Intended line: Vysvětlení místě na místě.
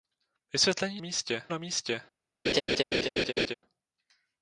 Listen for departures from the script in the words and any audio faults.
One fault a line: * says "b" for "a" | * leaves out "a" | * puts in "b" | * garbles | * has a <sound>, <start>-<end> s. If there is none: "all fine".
* has a laugh, 2.5-3.5 s